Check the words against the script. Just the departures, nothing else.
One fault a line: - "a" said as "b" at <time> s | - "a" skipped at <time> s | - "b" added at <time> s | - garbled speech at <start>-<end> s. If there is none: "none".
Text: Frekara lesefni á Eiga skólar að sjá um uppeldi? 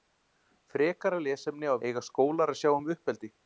none